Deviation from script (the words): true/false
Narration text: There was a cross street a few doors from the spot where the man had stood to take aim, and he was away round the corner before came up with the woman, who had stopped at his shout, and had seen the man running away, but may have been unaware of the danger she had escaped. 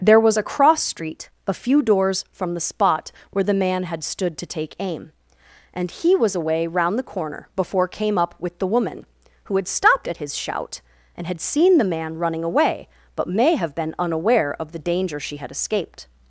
false